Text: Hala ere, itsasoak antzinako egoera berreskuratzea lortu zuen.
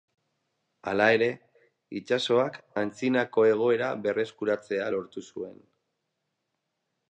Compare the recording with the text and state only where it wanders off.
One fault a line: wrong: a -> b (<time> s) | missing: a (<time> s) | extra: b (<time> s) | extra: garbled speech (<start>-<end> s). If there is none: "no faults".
no faults